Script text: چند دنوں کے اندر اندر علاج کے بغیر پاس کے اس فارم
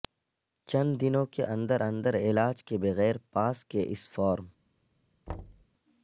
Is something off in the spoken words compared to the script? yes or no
no